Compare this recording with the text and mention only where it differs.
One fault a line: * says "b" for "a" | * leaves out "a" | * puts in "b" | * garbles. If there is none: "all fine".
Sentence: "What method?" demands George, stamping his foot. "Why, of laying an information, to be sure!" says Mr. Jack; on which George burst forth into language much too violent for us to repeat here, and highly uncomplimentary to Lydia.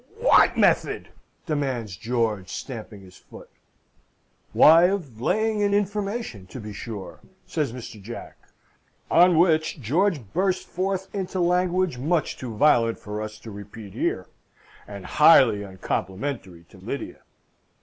all fine